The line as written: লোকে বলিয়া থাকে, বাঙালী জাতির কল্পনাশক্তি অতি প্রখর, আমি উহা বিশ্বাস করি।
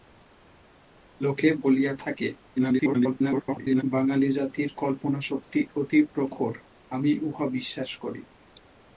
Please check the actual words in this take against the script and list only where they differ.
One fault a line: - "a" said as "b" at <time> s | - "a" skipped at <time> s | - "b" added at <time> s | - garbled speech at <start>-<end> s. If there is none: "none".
- garbled speech at 2.6-3.8 s